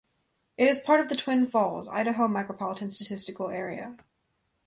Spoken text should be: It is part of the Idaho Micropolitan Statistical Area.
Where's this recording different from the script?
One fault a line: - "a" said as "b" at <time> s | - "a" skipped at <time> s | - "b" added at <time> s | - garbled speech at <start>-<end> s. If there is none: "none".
- "Twin Falls" added at 1.1 s